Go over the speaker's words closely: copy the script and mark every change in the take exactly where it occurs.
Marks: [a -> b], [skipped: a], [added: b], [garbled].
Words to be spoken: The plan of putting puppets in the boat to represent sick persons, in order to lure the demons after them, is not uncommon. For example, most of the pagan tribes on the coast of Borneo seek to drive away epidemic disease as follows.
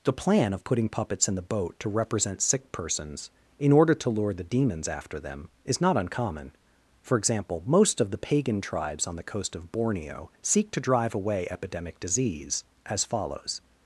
The plan of putting puppets in the boat to represent sick persons, in order to lure the demons after them, is not uncommon. For example, most of the pagan tribes on the coast of Borneo seek to drive away epidemic disease as follows.